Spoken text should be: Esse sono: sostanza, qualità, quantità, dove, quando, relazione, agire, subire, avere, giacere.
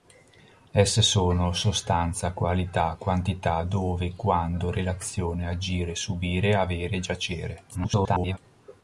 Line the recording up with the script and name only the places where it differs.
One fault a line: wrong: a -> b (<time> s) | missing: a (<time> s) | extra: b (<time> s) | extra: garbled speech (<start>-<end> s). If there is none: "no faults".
extra: garbled speech (7.7-8.4 s)